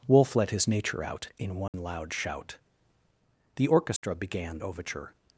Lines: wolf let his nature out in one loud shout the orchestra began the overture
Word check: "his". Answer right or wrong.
right